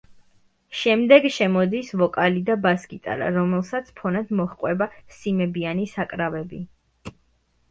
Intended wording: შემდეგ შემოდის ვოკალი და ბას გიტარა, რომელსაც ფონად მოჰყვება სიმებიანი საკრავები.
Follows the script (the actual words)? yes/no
yes